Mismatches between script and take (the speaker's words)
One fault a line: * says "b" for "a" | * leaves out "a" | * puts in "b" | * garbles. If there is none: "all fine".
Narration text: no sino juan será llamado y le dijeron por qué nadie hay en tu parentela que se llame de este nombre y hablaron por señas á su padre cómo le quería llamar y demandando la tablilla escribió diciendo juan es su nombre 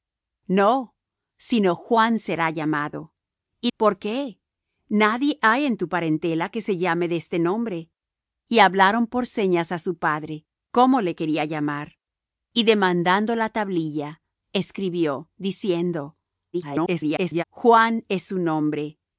* leaves out "le dijeron"
* garbles